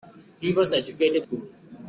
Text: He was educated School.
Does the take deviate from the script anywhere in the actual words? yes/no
no